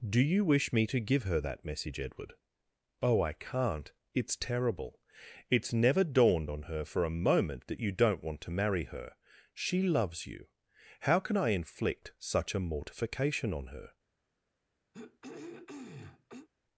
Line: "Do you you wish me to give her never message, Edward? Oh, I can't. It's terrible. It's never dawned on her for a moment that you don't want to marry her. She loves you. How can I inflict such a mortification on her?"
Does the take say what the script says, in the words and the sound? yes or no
no